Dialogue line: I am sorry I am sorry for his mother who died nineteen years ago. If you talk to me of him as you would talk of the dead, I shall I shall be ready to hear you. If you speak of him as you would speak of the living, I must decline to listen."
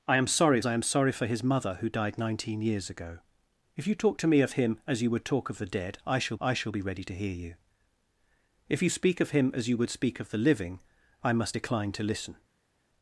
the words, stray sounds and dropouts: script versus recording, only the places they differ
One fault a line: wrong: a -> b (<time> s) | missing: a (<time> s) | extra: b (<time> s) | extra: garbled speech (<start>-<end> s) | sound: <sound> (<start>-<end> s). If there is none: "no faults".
no faults